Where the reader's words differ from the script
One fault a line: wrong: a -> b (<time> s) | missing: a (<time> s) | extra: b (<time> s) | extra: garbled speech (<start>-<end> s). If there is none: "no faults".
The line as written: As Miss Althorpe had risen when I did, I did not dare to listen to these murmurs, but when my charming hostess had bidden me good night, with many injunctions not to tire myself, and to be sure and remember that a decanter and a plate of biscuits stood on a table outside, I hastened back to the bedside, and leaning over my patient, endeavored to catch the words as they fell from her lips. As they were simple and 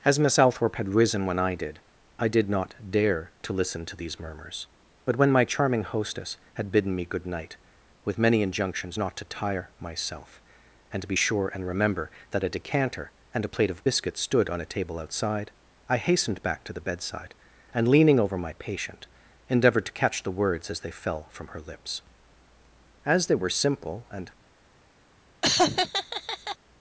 no faults